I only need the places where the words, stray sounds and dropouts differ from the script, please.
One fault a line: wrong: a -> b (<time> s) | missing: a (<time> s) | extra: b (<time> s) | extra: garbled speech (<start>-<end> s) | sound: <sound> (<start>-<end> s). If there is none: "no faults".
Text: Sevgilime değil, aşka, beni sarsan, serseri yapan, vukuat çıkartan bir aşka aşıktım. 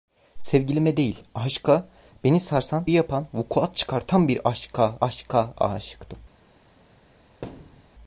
missing: serseri (2.9 s)
extra: aşka (5.0 s)
sound: thud (7.4-7.9 s)